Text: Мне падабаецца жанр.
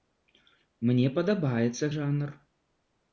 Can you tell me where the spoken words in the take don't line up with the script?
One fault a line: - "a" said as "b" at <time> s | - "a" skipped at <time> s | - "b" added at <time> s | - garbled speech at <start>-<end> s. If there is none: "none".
none